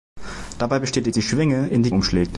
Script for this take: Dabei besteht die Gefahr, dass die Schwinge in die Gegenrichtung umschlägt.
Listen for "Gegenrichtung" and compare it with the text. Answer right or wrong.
wrong